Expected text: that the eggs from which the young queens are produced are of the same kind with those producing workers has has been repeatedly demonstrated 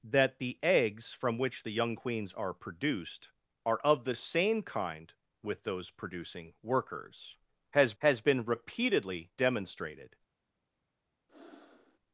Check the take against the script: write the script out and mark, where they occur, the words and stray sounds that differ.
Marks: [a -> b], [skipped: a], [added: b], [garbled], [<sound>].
that the eggs from which the young queens are produced are of the same kind with those producing workers has has been repeatedly demonstrated [breath]